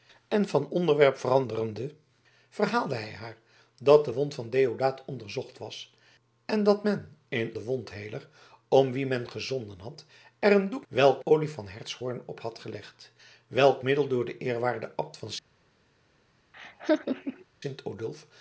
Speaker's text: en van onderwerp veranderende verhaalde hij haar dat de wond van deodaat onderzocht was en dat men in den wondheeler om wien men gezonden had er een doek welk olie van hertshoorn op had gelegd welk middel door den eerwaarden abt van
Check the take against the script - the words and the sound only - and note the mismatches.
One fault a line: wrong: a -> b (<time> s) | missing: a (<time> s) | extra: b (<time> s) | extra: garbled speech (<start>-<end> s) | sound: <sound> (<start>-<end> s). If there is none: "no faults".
sound: laugh (16.5-17.4 s)